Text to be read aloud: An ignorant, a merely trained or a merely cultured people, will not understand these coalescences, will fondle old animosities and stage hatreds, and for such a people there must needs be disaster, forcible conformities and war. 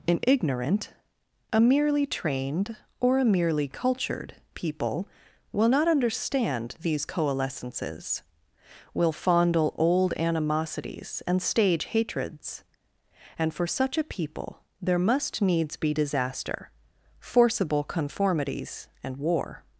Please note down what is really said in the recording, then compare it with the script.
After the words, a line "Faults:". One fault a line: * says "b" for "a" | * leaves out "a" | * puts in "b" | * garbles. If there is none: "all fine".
An ignorant, a merely trained or a merely cultured people, will not understand these coalescences, will fondle old animosities and stage hatreds, and for such a people there must needs be disaster, forcible conformities and war.
Faults:
all fine